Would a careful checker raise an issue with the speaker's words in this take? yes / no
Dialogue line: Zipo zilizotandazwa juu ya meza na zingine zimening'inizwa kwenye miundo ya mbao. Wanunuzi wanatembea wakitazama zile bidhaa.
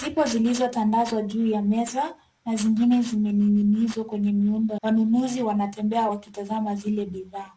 yes